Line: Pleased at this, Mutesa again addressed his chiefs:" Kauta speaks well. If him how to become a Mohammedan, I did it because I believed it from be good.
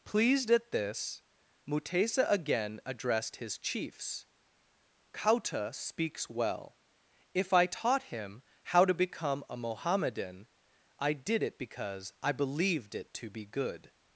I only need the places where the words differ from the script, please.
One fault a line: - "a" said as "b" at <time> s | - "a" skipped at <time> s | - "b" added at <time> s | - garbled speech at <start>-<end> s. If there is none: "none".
- "I taught" added at 7.5 s
- "from" said as "to" at 13.1 s